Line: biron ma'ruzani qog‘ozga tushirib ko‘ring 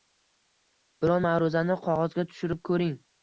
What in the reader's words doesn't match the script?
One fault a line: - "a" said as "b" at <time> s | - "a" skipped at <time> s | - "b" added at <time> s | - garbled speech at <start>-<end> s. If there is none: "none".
none